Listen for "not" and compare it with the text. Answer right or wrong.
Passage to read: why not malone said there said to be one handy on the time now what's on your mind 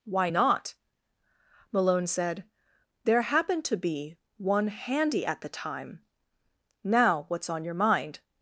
right